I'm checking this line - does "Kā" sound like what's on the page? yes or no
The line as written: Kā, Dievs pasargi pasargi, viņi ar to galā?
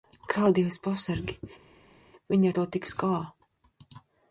yes